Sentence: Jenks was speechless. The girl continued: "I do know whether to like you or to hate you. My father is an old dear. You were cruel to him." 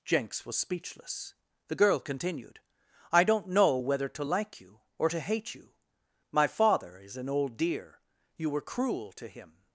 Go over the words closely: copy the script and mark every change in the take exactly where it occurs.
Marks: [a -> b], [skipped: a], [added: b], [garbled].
Jenks was speechless. The girl continued: "I [do -> don't] know whether to like you or to hate you. My father is an old dear. You were cruel to him."